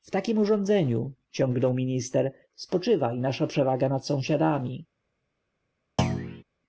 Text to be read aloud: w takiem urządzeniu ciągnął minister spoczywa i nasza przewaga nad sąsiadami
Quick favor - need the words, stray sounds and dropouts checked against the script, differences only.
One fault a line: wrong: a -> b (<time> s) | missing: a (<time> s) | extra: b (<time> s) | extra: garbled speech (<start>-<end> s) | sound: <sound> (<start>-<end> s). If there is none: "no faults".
sound: thud (6.0-6.4 s)